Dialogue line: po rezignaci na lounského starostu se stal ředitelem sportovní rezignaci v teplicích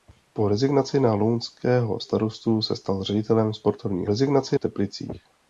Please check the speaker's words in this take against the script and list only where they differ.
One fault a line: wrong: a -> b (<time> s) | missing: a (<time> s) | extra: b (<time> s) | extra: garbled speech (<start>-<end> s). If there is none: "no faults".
no faults